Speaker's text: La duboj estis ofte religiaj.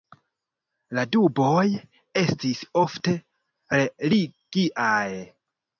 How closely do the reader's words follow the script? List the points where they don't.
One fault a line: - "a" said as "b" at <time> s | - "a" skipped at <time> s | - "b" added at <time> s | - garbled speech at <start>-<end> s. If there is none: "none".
none